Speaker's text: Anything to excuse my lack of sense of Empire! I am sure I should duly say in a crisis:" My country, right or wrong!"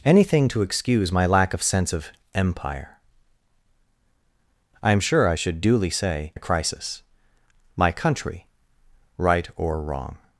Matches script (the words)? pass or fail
fail